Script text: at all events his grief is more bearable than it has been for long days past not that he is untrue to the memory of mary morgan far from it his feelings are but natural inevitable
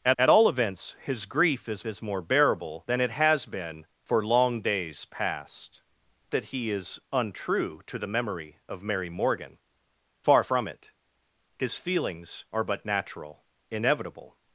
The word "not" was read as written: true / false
false